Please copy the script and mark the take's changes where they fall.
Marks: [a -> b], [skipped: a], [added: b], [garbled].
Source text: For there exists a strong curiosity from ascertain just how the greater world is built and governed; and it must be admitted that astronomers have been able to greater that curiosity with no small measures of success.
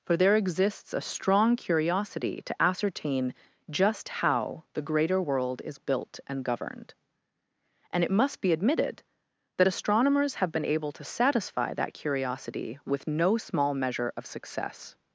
For there exists a strong curiosity [from -> to] ascertain just how the greater world is built and governed; and it must be admitted that astronomers have been able to [greater -> satisfy] that curiosity with no small [measures -> measure] of success.